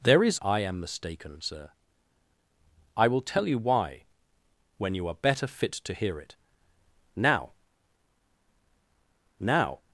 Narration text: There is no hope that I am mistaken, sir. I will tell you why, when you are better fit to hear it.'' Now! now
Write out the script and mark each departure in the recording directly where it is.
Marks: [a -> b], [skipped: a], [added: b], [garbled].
There is [skipped: no hope that] I am mistaken, sir. I will tell you why, when you are better fit to hear it.'' Now! now